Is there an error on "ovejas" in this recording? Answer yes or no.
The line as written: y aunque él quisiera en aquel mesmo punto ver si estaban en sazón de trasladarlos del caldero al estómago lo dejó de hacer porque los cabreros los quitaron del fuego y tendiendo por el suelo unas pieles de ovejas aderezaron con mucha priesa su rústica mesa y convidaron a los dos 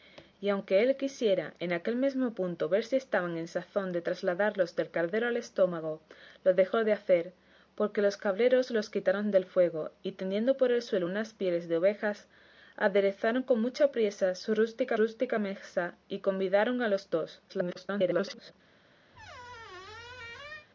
no